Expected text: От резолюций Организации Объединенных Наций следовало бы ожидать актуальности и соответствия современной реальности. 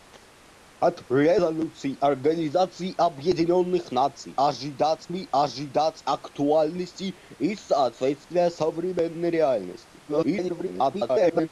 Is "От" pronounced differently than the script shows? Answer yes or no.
no